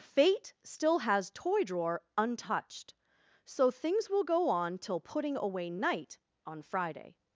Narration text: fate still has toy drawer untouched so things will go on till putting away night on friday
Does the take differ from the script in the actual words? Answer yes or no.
no